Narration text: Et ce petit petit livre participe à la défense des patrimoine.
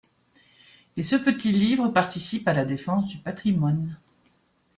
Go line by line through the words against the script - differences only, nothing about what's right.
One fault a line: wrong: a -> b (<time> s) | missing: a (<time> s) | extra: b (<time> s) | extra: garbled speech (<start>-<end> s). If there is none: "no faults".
missing: petit (1.5 s)
wrong: des -> du (3.1 s)